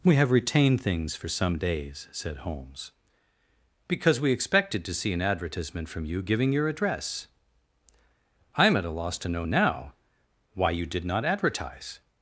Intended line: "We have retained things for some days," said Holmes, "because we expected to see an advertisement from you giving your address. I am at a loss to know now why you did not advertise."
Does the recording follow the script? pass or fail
pass